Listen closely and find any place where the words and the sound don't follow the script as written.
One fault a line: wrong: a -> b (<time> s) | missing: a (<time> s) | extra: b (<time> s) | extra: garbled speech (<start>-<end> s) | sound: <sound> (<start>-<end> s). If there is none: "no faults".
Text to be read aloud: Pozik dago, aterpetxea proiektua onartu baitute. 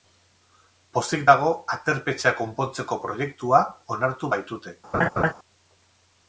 extra: konpontzeko (2.4 s)
sound: laugh (4.9-5.3 s)